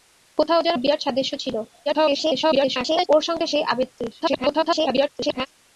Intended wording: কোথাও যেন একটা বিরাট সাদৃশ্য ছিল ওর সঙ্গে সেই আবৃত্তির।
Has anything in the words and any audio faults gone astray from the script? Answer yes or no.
yes